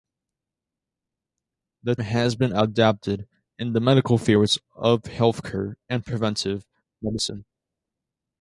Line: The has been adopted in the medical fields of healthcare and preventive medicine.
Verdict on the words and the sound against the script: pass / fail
pass